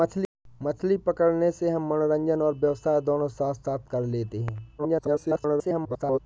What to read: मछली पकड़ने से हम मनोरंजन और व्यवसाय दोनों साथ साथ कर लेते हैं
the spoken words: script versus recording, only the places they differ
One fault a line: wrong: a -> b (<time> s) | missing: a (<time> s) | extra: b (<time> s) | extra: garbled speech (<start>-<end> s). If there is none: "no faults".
extra: garbled speech (4.8-6.2 s)